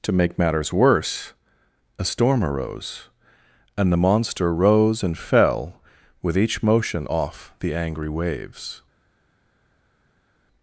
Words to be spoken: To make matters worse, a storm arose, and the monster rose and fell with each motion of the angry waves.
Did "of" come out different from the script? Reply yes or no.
yes